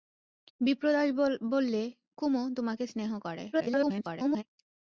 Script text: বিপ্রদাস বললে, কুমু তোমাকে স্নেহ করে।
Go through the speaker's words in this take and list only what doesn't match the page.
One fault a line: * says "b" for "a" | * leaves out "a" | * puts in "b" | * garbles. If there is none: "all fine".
* garbles